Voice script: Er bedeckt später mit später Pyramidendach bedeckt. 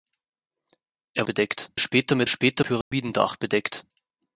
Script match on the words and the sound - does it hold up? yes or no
no